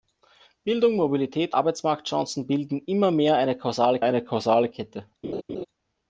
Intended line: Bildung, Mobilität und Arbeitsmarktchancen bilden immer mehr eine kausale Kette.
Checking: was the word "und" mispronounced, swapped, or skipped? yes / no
yes